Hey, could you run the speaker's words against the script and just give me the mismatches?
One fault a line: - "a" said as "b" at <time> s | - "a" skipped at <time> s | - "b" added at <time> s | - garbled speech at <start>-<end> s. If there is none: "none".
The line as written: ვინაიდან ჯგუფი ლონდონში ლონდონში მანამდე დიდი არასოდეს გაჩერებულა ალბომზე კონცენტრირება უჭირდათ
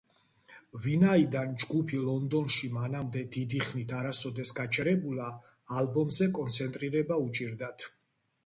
- "ლონდონში" skipped at 2.7 s
- "ხნით" added at 3.7 s